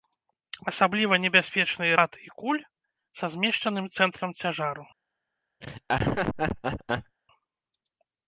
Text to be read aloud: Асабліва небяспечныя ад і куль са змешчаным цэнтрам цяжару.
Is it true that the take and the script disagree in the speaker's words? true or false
false